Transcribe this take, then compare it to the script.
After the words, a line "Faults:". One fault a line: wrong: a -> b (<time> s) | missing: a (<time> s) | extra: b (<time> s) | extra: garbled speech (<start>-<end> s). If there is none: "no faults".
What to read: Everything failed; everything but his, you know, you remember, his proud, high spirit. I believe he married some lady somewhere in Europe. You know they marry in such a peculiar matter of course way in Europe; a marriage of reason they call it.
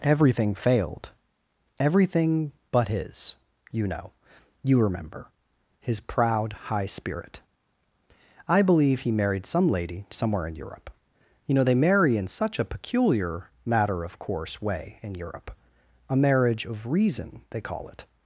Everything failed; everything but his, you know, you remember, his proud, high spirit. I believe he married some lady somewhere in Europe. You know they marry in such a peculiar matter of course way in Europe; a marriage of reason they call it.
Faults:
no faults